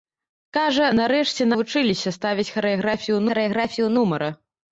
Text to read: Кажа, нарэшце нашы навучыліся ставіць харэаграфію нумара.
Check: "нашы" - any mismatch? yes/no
yes